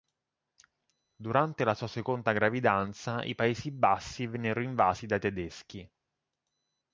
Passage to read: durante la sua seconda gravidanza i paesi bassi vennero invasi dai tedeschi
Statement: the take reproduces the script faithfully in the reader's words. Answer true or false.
true